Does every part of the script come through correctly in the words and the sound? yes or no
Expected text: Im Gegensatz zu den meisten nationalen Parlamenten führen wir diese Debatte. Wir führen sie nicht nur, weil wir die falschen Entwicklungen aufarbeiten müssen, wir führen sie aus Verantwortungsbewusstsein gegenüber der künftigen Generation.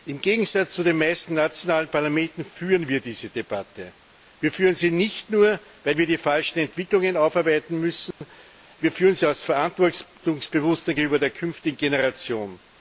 no